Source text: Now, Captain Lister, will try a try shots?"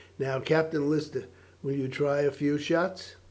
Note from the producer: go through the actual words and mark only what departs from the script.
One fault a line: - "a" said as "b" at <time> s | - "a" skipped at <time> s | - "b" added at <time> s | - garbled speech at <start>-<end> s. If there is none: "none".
- "you" added at 1.7 s
- "try" said as "few" at 2.3 s